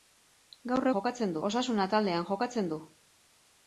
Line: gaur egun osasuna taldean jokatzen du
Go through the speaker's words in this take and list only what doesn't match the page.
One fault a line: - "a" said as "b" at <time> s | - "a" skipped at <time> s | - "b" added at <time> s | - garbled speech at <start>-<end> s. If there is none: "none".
- "egun" said as "jokatzen" at 1.0 s